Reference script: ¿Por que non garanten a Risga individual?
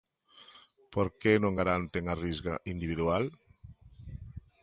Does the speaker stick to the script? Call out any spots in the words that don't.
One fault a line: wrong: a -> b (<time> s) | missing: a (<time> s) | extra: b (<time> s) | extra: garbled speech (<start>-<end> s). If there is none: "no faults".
no faults